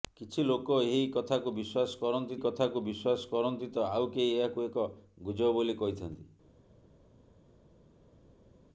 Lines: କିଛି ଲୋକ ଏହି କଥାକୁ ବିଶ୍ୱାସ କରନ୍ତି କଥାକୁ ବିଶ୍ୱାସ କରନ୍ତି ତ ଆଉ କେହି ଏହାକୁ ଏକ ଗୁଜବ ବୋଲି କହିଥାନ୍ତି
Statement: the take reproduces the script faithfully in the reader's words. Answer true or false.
true